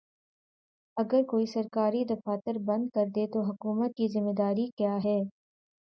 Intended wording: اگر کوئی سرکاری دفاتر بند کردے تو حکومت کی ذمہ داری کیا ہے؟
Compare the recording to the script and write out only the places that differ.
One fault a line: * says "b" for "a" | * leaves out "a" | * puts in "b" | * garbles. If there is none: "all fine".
all fine